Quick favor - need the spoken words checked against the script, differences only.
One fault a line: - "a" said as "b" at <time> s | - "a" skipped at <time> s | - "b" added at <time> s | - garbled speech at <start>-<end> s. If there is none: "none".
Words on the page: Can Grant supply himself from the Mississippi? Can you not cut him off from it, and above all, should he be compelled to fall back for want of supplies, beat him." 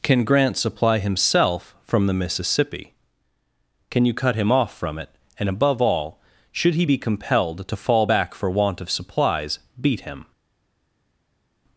- "not" skipped at 4.1 s